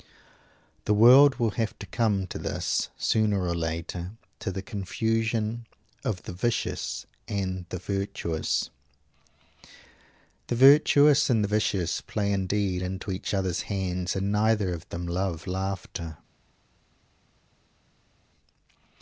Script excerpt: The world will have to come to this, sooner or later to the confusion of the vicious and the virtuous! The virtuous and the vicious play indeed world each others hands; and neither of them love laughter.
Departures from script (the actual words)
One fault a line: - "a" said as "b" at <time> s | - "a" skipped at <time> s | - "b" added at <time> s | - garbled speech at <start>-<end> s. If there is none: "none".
- "world" said as "into" at 12.8 s